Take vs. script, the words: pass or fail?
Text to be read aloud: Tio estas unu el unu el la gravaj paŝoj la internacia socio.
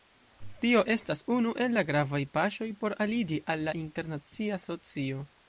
fail